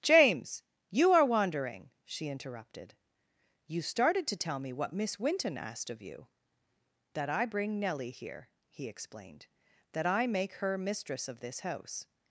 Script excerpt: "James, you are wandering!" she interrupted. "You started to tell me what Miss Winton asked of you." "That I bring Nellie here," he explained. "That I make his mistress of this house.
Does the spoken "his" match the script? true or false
false